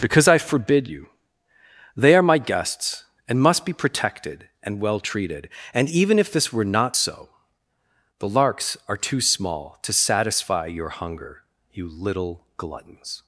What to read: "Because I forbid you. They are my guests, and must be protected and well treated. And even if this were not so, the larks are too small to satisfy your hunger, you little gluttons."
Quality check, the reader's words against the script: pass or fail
pass